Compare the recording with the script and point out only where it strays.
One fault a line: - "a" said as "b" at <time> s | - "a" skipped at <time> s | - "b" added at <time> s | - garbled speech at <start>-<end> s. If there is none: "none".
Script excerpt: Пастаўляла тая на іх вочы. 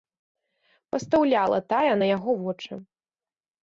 - "іх" said as "яго" at 2.2 s